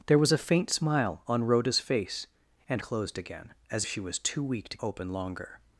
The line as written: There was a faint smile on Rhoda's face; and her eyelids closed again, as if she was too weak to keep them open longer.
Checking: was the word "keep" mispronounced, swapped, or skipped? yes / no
yes